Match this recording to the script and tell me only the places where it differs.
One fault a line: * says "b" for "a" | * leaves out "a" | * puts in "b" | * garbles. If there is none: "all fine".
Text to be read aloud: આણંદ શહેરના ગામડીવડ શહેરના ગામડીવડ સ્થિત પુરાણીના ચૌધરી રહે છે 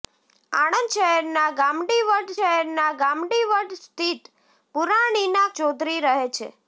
all fine